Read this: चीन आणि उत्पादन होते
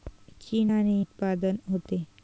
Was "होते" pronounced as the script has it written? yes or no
yes